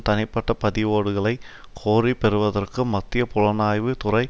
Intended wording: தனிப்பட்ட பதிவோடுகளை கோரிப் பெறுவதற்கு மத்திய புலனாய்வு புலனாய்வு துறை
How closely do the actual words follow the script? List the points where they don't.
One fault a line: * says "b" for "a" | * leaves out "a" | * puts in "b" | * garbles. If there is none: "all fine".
* leaves out "புலனாய்வு"